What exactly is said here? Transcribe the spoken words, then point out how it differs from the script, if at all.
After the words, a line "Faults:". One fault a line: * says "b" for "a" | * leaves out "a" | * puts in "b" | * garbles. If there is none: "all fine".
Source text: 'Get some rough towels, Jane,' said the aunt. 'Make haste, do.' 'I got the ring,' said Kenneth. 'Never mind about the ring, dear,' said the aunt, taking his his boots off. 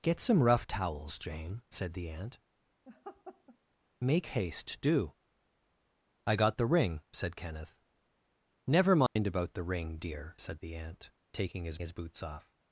'Get some rough towels, Jane,' said the aunt. 'Make haste, do.' 'I got the ring,' said Kenneth. 'Never mind about the ring, dear,' said the aunt, taking his his boots off.
Faults:
all fine